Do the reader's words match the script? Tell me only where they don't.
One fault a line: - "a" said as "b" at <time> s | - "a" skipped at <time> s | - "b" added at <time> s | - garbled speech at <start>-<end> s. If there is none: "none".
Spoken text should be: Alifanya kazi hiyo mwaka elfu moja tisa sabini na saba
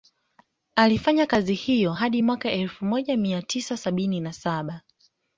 - "hadi" added at 1.9 s
- "mia" added at 3.2 s